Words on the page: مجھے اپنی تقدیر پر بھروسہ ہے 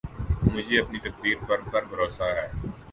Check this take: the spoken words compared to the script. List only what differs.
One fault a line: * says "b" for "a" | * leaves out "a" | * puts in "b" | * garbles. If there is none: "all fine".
* puts in "پر"